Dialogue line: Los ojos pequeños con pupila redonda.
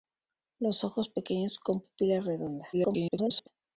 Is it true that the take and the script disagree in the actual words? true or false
true